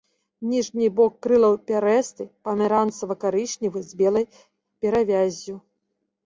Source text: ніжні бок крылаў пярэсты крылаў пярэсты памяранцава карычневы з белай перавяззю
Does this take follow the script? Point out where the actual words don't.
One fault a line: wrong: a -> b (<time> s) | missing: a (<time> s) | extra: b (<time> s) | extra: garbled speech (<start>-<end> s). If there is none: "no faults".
missing: крылаў пярэсты (2.3 s)